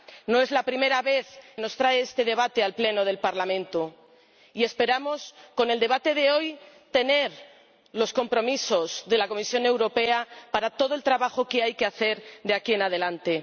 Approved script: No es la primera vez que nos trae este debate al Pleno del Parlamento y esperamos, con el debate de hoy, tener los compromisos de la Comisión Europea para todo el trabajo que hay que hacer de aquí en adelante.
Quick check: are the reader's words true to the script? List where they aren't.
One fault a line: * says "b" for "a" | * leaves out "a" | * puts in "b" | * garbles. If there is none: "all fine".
* leaves out "que"